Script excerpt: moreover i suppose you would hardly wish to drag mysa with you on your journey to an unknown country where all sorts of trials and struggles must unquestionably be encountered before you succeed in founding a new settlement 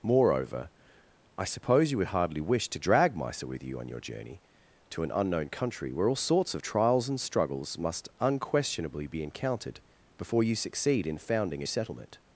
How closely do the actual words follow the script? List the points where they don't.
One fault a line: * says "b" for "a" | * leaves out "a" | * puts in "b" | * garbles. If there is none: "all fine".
* leaves out "new"